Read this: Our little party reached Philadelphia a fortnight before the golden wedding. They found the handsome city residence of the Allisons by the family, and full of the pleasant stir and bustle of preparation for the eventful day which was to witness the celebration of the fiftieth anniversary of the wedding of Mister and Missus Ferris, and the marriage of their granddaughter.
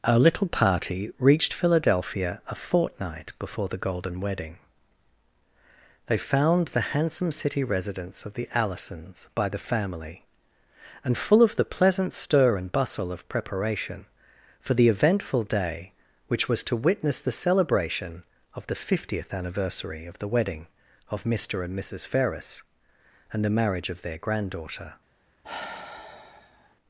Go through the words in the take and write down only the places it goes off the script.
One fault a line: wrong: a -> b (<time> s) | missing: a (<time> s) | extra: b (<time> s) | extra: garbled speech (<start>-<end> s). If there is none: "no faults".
no faults